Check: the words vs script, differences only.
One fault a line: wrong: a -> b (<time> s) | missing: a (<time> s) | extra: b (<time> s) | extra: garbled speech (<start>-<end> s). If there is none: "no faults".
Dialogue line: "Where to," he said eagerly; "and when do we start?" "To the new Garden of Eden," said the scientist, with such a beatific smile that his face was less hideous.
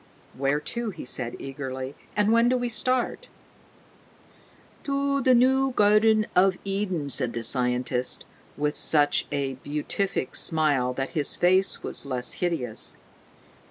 no faults